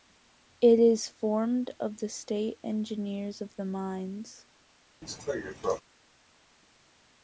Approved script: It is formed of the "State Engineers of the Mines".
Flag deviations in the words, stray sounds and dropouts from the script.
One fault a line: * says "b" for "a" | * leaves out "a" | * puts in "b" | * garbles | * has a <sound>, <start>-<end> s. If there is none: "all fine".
* has a cough, 5.0-5.8 s